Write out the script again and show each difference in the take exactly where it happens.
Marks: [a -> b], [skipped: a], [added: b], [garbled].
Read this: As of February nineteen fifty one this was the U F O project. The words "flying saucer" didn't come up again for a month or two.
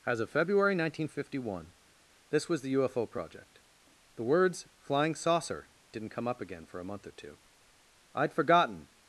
As of February nineteen fifty one this was the U F O project. The words "flying saucer" didn't come up again for a month or two. [added: I'd forgotten]